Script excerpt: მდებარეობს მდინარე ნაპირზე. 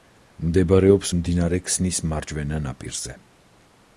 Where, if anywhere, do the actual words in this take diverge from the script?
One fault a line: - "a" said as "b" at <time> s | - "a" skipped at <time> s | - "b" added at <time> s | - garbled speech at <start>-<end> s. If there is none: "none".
- "ქსნის მარჯვენა" added at 1.7 s